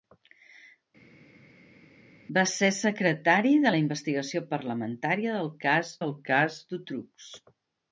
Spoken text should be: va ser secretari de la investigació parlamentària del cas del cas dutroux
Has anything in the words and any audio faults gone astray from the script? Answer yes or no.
no